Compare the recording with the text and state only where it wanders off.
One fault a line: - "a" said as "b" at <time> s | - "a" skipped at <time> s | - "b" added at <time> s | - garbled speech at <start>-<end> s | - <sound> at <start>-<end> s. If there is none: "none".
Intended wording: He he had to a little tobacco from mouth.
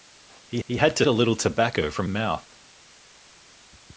none